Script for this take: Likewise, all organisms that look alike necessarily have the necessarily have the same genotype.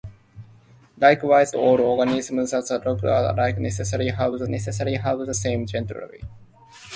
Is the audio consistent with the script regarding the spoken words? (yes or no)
yes